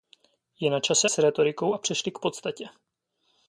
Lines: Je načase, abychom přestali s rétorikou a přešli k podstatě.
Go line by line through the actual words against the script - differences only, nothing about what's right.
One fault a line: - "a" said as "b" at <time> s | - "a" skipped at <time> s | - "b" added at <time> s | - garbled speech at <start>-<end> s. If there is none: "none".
- "abychom přestali" skipped at 1.1 s